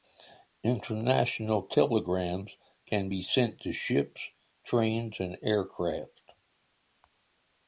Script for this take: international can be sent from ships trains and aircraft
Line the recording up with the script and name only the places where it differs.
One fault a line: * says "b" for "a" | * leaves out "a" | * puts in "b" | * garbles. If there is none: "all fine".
* puts in "telegrams"
* says "to" for "from"